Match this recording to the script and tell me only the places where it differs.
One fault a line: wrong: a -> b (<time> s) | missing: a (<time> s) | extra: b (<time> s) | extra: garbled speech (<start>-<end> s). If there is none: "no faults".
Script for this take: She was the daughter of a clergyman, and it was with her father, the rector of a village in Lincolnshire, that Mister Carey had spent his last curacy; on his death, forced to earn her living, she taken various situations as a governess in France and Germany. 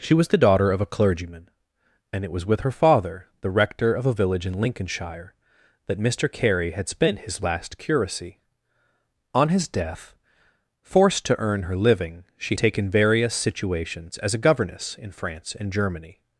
no faults